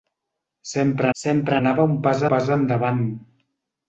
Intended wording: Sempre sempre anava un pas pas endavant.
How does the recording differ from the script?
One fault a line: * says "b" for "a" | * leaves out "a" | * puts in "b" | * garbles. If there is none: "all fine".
all fine